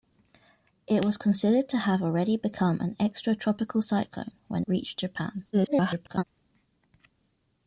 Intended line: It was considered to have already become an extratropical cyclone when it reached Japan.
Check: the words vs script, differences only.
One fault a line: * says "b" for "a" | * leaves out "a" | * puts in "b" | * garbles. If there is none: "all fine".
* leaves out "it"
* garbles